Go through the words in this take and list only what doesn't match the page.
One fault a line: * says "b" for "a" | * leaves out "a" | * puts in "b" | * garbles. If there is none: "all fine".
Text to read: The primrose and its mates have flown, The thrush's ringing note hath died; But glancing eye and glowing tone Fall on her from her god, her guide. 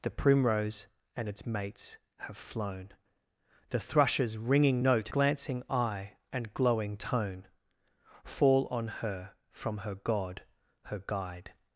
* leaves out "hath died But"